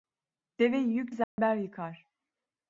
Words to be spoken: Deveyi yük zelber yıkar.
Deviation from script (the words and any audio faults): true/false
true